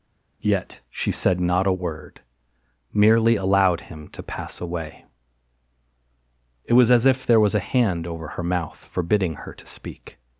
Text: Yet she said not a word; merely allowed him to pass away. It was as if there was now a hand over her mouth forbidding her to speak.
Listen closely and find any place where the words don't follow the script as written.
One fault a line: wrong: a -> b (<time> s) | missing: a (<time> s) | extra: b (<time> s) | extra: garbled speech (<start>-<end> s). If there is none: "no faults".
missing: now (7.5 s)